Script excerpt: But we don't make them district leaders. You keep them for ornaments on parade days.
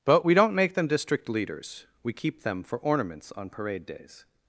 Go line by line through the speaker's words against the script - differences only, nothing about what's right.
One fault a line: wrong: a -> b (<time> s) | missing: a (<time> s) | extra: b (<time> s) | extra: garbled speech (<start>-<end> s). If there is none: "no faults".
wrong: You -> We (2.0 s)